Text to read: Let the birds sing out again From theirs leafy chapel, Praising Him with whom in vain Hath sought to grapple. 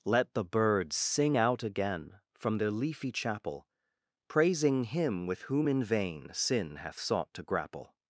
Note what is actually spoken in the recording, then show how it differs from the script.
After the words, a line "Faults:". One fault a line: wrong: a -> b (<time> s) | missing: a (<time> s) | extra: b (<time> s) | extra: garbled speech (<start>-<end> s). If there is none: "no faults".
Let the birds sing out again From their leafy chapel, Praising Him with whom in vain Sin hath sought to grapple.
Faults:
wrong: theirs -> their (2.6 s)
extra: Sin (6.3 s)